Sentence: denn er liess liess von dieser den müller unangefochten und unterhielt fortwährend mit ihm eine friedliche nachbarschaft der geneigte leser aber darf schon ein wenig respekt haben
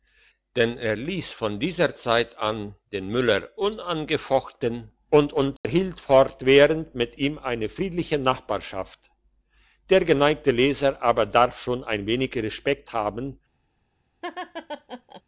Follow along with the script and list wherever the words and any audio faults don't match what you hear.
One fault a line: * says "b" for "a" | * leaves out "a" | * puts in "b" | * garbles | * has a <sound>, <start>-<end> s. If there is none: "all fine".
* leaves out "liess"
* puts in "zeit an"
* has a dropout, 5.6-5.6 s
* has a laugh, 14.2-15.2 s